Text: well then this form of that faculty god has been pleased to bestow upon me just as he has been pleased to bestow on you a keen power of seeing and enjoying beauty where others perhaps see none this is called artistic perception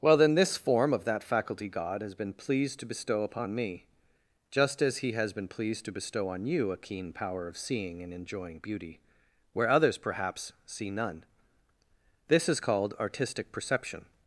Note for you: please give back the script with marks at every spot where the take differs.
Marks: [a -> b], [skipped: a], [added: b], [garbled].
well then this form of that faculty god has been pleased to bestow upon me just as he has been pleased to bestow on you a keen power of seeing and enjoying beauty where others perhaps see none this is called artistic perception